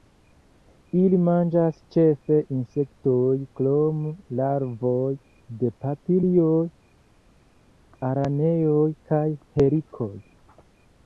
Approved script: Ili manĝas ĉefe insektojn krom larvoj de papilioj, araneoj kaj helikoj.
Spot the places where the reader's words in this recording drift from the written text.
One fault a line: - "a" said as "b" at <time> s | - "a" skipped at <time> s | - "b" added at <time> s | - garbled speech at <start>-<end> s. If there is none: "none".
none